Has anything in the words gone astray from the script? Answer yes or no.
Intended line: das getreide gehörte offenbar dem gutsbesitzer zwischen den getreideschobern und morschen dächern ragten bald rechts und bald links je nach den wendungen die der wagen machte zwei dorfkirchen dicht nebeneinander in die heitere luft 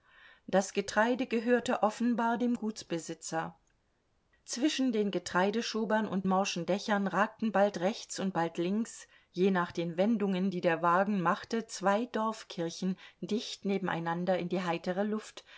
no